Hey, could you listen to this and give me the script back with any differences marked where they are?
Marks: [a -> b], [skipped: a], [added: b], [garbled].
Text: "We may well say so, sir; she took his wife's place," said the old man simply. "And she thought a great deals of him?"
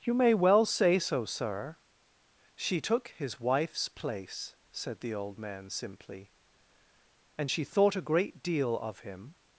["We -> You] may well say so, sir; she took his wife's place," said the old man simply. "And she thought a great [deals -> deal] of him?"